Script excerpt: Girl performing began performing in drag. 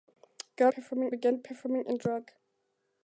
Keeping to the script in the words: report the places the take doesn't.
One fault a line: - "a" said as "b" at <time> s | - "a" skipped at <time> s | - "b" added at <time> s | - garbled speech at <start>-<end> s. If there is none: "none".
none